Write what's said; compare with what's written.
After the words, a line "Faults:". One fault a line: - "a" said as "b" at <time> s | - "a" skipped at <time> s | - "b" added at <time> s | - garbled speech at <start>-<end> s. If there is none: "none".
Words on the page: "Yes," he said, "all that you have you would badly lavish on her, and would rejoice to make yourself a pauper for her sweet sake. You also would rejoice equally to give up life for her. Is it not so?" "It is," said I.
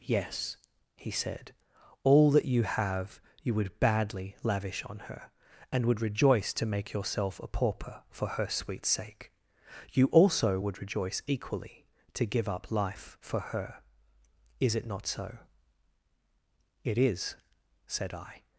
"Yes," he said, "all that you have you would badly lavish on her, and would rejoice to make yourself a pauper for her sweet sake. You also would rejoice equally to give up life for her. Is it not so?" "It is," said I.
Faults:
none